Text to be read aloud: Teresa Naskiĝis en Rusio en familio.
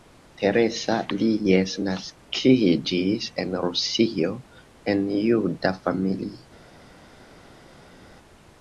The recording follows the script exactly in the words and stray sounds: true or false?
false